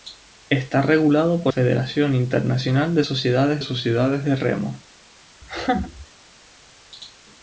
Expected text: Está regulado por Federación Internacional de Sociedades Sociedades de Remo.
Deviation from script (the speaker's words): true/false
false